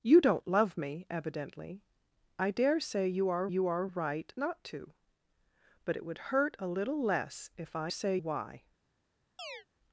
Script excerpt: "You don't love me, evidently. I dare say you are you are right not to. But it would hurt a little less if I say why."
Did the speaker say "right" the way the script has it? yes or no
yes